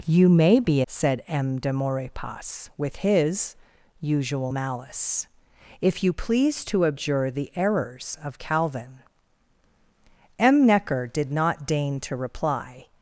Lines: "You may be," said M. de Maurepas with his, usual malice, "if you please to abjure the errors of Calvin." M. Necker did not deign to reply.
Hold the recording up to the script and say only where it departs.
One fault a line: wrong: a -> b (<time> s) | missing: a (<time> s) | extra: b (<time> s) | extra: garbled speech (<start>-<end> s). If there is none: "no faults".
no faults